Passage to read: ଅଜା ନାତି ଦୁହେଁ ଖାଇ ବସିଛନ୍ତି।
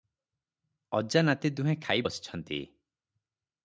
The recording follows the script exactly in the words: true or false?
true